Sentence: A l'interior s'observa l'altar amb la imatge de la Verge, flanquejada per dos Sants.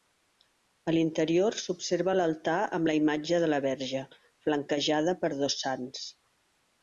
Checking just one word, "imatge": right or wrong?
right